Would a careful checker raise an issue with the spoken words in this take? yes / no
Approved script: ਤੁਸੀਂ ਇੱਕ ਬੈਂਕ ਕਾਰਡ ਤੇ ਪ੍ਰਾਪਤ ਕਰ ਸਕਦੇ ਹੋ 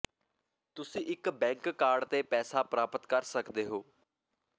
yes